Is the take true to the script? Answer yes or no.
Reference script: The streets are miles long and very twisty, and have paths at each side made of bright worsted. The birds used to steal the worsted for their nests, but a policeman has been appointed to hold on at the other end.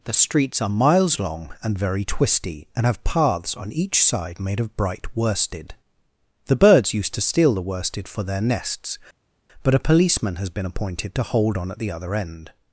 no